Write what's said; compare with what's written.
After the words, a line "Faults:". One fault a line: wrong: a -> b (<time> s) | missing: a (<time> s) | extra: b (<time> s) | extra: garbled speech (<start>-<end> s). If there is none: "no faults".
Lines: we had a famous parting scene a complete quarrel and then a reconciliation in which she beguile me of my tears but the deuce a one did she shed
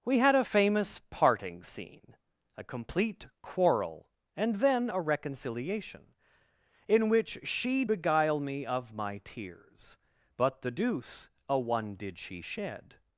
we had a famous parting scene a complete quarrel and then a reconciliation in which she beguile me of my tears but the deuce a one did she shed
Faults:
no faults